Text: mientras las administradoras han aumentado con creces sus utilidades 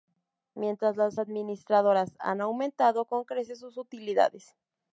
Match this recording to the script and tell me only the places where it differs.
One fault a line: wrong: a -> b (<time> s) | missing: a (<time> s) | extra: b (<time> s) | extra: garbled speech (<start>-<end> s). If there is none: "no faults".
no faults